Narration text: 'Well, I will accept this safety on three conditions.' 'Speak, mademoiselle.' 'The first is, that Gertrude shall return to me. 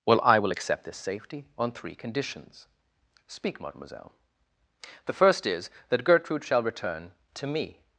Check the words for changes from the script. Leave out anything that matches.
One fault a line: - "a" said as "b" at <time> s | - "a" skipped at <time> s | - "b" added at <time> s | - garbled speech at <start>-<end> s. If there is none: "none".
none